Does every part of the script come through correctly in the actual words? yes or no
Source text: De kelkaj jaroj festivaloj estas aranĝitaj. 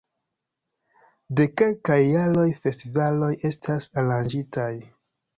yes